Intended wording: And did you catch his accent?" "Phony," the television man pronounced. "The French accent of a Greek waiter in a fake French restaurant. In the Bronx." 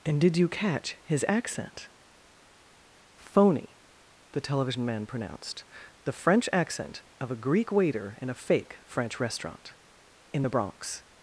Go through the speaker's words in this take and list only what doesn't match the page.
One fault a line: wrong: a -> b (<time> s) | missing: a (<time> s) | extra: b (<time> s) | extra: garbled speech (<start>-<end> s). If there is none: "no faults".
no faults